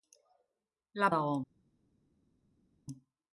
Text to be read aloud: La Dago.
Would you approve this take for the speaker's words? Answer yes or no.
yes